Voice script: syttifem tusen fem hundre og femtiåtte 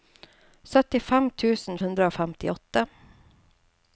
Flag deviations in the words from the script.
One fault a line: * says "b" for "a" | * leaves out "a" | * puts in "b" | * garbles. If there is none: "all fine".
* leaves out "fem"